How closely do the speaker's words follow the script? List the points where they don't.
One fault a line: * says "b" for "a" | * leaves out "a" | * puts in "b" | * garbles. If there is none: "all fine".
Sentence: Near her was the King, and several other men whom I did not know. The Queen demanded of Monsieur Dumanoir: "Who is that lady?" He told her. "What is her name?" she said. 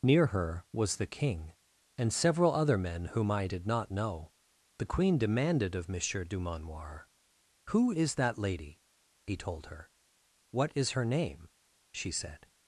all fine